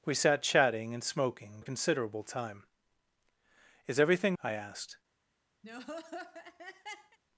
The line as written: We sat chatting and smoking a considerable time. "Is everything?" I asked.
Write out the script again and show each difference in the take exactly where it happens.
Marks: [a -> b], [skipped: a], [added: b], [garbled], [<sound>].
We sat chatting and smoking a considerable time. "Is everything?" I asked. [laugh]